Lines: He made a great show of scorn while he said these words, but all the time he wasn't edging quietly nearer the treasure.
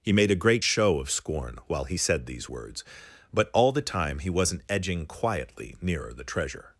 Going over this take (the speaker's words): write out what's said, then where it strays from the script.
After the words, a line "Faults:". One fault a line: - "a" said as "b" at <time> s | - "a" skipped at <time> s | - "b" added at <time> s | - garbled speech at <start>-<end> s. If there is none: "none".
He made a great show of scorn while he said these words, but all the time he wasn't edging quietly nearer the treasure.
Faults:
none